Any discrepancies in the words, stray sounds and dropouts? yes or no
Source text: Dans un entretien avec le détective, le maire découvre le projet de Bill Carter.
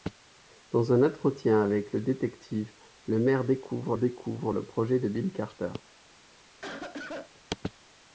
yes